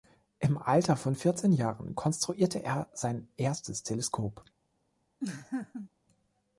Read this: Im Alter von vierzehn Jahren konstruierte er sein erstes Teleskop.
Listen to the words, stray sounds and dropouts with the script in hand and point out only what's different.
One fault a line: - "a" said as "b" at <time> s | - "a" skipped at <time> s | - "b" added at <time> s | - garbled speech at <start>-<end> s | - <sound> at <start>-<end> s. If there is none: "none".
- laugh at 5.2-5.9 s